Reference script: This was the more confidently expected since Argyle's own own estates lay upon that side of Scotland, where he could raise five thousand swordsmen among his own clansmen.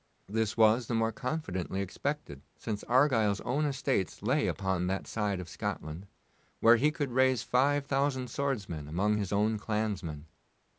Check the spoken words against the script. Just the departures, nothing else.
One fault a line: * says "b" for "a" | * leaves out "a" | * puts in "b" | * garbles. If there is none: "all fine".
* leaves out "own"